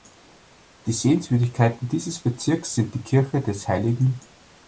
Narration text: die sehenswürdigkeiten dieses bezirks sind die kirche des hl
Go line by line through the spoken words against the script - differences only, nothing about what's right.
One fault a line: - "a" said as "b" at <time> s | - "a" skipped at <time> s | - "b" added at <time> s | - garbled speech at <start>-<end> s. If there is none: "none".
none